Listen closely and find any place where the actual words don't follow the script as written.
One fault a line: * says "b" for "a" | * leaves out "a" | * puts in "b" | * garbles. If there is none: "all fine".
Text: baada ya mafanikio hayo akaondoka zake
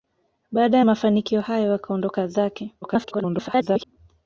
* garbles